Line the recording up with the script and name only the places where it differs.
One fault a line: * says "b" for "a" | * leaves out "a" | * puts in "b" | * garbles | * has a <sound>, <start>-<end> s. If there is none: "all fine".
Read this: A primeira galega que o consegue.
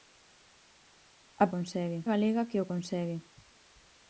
* says "consegue" for "primeira"